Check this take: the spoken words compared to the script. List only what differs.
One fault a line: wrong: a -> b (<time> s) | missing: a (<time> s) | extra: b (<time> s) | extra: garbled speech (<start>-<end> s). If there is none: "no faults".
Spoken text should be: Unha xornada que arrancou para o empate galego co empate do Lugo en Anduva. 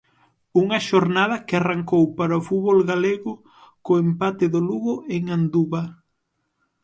wrong: empate -> fútbol (2.5 s)